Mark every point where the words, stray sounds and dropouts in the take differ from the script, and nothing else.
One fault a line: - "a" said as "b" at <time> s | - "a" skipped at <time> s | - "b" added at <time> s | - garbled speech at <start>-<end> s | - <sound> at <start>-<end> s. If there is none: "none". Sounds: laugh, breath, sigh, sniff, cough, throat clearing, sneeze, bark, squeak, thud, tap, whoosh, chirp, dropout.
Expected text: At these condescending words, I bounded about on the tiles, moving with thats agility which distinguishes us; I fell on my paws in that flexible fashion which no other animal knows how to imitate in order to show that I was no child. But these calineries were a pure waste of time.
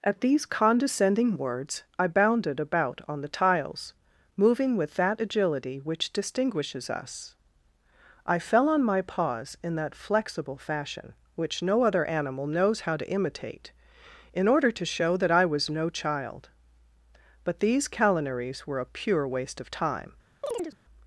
- "thats" said as "that" at 5.0 s
- chirp at 20.4-20.8 s